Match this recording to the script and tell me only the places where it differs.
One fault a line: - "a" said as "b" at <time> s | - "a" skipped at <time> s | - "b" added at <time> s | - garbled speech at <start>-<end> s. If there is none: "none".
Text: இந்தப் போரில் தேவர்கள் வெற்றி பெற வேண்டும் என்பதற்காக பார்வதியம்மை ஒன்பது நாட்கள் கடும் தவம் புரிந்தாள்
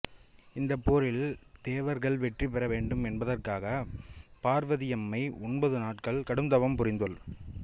none